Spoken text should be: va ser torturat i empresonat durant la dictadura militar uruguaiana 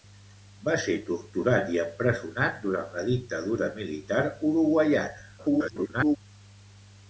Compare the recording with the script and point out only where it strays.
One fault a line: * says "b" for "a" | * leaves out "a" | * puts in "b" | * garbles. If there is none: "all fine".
* garbles